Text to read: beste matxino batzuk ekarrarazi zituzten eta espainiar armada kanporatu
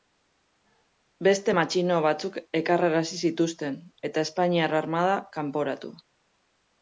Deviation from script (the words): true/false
false